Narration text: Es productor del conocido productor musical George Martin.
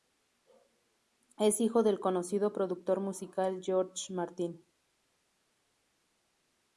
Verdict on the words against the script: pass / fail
fail